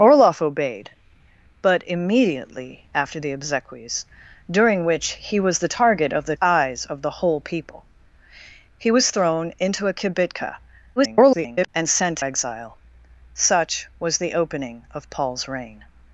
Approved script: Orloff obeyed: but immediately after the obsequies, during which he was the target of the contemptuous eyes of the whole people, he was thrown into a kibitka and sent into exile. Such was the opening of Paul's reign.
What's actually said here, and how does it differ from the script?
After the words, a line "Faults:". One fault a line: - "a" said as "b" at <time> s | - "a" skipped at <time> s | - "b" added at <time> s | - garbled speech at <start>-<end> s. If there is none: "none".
Orloff obeyed: but immediately after the obsequies, during which he was the target of the eyes of the whole people, he was thrown into a kibitka [garbled] and sent exile. Such was the opening of Paul's reign.
Faults:
- "contemptuous" skipped at 6.3 s
- garbled speech at 11.0-11.7 s
- "into" skipped at 12.2 s